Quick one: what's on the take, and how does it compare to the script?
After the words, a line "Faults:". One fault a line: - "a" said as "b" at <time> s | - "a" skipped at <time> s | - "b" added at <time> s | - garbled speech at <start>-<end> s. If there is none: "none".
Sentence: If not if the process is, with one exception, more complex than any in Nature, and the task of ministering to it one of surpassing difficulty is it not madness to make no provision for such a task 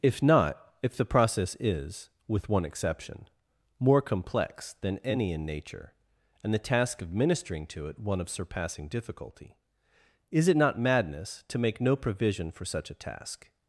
If not if the process is, with one exception, more complex than any in Nature, and the task of ministering to it one of surpassing difficulty is it not madness to make no provision for such a task
Faults:
none